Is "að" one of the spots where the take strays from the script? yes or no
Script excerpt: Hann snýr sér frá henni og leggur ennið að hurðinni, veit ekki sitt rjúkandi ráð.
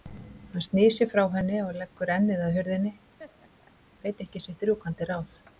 no